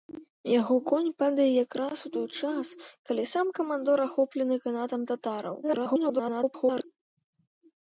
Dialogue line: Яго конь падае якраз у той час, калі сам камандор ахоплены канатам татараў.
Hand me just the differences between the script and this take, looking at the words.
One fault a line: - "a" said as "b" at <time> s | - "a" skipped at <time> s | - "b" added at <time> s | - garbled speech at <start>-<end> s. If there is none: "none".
- garbled speech at 5.6-6.8 s